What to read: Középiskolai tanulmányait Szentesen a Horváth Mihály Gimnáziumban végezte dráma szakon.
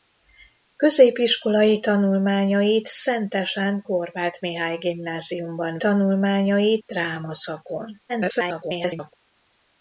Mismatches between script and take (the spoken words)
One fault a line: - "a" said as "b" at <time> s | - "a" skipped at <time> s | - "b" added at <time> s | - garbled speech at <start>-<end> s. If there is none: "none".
- "a" skipped at 3.8 s
- "végezte" said as "tanulmányait" at 5.8 s
- garbled speech at 8.1-9.1 s